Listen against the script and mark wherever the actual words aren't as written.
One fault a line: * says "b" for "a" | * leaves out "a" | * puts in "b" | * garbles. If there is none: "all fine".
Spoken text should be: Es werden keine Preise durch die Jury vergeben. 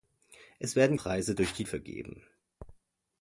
* leaves out "keine"
* leaves out "Jury"